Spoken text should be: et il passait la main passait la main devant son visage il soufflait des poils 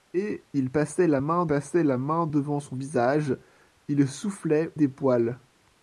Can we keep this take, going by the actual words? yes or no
yes